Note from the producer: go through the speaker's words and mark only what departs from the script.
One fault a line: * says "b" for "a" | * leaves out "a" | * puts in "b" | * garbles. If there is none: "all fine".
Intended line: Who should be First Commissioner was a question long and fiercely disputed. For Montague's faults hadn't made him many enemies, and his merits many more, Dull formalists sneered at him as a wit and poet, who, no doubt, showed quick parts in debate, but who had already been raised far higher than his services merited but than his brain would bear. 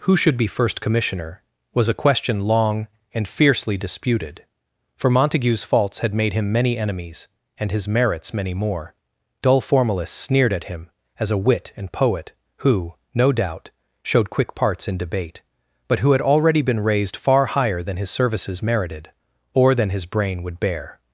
* says "had" for "hadn't"
* says "or" for "but"